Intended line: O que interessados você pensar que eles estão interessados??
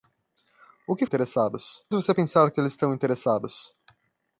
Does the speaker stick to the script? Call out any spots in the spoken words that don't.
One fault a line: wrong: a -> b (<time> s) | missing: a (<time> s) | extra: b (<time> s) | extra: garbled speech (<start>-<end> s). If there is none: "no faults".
no faults